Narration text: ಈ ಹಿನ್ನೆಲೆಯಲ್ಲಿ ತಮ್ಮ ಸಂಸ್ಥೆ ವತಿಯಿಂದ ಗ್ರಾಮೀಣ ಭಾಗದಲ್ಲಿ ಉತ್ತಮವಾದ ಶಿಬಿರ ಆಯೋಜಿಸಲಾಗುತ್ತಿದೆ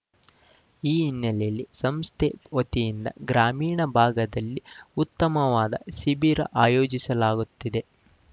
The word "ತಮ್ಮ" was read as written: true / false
false